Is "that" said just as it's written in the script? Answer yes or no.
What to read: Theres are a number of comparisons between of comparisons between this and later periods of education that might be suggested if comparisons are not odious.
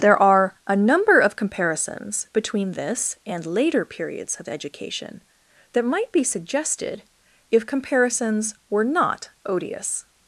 yes